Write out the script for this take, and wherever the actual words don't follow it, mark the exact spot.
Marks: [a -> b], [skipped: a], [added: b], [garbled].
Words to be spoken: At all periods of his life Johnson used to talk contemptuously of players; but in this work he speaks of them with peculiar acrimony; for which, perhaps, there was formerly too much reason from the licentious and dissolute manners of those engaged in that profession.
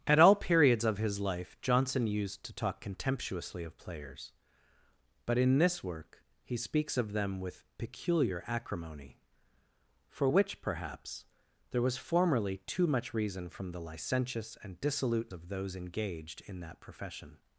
At all periods of his life Johnson used to talk contemptuously of players; but in this work he speaks of them with peculiar acrimony; for which, perhaps, there was formerly too much reason from the licentious and dissolute [skipped: manners] of those engaged in that profession.